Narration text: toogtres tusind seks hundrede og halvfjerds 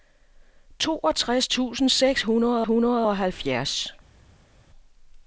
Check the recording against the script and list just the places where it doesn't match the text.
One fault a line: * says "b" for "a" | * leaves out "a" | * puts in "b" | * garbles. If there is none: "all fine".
* puts in "hundrede"